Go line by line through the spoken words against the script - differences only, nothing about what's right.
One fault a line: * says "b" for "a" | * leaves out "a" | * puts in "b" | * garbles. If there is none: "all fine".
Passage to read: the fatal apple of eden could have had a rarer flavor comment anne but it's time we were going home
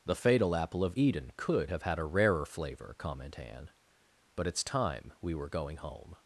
all fine